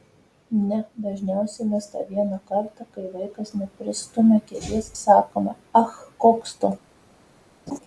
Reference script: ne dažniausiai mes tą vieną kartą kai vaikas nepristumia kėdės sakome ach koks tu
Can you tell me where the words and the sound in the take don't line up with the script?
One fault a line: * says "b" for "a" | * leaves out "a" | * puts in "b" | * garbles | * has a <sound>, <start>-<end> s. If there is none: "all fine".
* has a laugh, 7.7-7.8 s